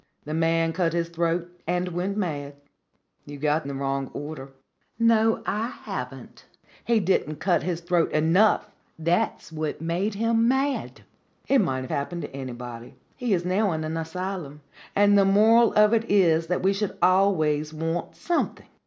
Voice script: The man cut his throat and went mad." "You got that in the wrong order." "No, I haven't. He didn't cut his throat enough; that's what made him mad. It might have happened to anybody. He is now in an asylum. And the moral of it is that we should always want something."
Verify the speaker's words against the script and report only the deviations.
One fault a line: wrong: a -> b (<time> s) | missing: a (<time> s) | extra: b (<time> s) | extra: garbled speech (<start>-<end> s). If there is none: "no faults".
missing: that in (3.7 s)